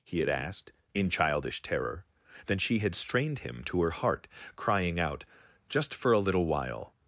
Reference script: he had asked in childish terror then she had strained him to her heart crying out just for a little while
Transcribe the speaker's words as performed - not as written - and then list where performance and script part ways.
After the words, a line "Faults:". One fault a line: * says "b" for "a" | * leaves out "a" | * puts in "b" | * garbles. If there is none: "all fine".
he had asked in childish terror then she had strained him to her heart crying out just for a little while
Faults:
all fine